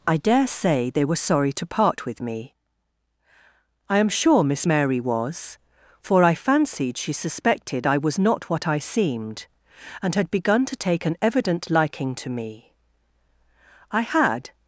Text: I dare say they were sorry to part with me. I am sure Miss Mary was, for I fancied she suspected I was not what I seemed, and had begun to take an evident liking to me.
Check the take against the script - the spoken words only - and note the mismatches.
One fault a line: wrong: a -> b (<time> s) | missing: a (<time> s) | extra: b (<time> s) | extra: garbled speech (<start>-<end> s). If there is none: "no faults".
extra: I had (13.9 s)